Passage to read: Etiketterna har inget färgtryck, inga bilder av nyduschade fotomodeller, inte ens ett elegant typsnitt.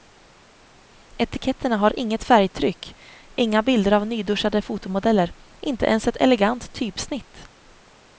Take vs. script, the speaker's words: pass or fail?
pass